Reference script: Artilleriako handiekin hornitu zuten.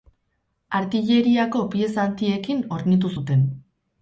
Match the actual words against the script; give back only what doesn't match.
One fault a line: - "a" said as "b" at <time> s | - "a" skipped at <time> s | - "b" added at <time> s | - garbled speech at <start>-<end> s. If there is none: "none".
- "pieza" added at 1.8 s